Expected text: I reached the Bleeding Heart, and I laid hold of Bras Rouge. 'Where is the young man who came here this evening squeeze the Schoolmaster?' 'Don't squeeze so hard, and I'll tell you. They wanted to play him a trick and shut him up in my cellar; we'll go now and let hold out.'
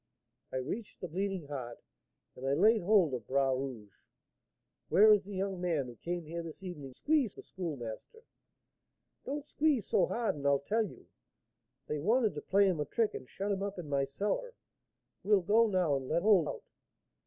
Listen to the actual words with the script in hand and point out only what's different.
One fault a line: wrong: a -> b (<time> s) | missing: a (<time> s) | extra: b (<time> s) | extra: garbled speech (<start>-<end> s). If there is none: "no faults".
no faults